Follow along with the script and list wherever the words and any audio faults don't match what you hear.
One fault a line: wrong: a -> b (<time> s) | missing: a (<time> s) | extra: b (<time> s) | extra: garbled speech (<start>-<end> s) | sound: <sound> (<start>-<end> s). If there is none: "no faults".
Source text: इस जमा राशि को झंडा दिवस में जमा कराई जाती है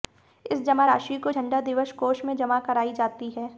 extra: कोष (1.9 s)